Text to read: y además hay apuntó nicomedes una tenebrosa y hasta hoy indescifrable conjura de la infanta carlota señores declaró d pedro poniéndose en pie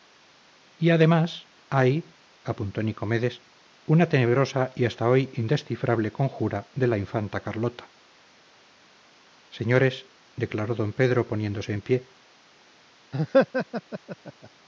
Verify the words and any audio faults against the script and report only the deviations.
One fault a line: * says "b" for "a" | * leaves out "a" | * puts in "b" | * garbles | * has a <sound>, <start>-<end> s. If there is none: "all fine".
* has a laugh, 13.1-14.5 s